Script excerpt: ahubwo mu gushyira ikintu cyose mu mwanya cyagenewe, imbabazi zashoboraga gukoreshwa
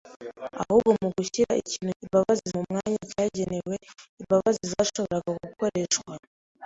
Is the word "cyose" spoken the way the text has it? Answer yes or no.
no